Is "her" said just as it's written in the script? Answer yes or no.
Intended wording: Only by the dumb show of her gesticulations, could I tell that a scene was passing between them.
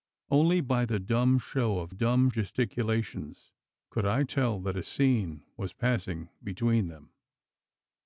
no